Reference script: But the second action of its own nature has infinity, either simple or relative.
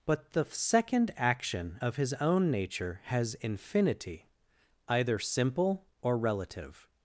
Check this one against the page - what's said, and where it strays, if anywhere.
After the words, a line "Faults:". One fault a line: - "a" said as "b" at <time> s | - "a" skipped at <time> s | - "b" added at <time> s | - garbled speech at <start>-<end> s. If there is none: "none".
But the second action of his own nature has infinity, either simple or relative.
Faults:
- "its" said as "his" at 2.0 s